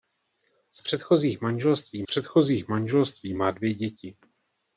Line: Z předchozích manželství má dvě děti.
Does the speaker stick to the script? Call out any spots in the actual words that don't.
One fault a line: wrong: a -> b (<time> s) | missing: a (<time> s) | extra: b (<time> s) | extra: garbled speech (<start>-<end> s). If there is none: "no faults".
extra: předchozích manželství (2.0 s)